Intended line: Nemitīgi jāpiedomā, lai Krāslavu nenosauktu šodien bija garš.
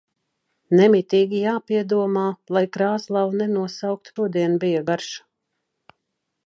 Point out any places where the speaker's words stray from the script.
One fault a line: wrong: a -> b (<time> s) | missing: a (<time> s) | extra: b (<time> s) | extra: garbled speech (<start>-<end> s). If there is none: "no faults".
no faults